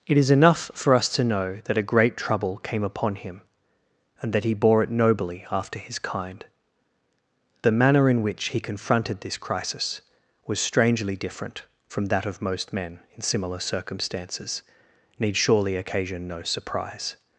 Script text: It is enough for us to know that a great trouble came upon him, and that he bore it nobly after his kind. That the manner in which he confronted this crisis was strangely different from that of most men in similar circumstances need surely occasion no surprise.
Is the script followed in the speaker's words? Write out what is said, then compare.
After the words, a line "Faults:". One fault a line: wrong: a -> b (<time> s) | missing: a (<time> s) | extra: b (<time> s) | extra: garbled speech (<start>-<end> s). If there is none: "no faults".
It is enough for us to know that a great trouble came upon him, and that he bore it nobly after his kind. The manner in which he confronted this crisis was strangely different from that of most men in similar circumstances need surely occasion no surprise.
Faults:
missing: That (6.4 s)